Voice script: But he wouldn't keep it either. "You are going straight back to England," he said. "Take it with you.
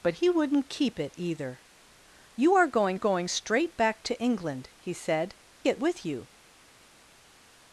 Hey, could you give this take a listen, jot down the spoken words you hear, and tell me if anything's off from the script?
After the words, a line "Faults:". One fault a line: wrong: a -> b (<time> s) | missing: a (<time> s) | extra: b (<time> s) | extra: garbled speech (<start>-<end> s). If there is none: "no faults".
But he wouldn't keep it either. "You are going going straight back to England," he said. "It with you.
Faults:
extra: going (2.9 s)
missing: Take (5.3 s)